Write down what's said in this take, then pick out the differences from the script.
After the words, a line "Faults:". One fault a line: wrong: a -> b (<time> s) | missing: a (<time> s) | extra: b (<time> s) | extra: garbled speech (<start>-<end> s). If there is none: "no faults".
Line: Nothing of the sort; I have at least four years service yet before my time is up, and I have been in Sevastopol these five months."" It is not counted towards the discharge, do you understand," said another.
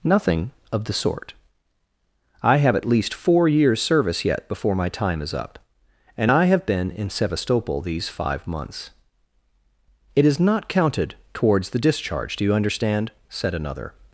Nothing of the sort; I have at least four years service yet before my time is up, and I have been in Sevastopol these five months."" It is not counted towards the discharge, do you understand," said another.
Faults:
no faults